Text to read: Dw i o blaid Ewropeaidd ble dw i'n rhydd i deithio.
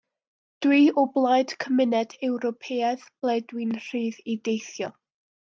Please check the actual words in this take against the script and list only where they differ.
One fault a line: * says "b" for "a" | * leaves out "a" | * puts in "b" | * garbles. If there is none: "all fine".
* puts in "Cymuned"